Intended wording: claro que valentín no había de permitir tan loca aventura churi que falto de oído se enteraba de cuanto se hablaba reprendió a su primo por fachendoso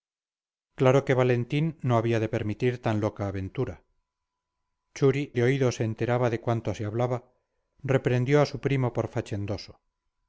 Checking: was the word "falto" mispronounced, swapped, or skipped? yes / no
yes